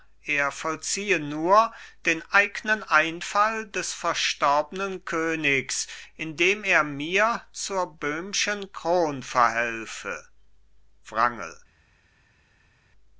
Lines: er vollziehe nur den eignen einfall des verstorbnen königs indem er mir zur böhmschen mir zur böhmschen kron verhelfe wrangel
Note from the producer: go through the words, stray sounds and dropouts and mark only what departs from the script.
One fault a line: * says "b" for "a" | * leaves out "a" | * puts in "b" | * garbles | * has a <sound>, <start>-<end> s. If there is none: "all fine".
* leaves out "mir zur böhmschen"